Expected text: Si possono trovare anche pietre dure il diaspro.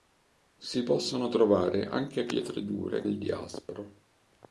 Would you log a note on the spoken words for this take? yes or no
no